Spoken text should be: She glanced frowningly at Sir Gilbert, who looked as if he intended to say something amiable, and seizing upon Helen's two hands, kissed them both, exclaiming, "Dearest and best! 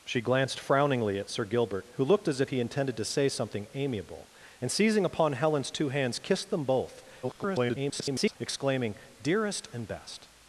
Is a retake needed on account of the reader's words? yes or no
yes